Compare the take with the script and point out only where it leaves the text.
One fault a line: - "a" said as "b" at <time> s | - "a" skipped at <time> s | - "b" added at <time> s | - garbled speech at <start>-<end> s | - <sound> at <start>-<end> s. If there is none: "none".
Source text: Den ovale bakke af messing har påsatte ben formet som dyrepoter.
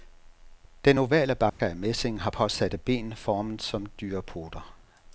- dropout at 1.5-1.6 s